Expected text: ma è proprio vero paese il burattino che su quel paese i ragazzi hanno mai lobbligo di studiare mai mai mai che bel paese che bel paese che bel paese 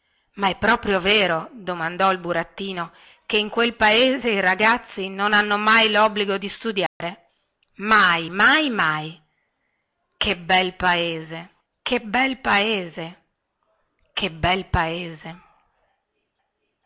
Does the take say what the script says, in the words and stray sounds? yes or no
no